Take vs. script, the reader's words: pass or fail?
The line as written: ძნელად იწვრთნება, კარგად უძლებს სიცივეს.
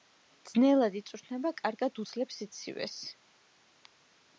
pass